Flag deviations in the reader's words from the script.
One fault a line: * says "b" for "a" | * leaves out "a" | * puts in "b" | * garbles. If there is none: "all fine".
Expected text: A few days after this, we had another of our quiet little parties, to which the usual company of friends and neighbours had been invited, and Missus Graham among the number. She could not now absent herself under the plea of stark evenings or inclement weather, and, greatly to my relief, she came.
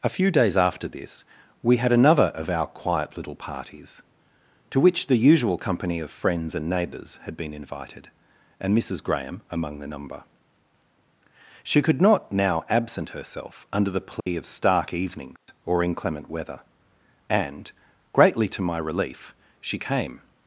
all fine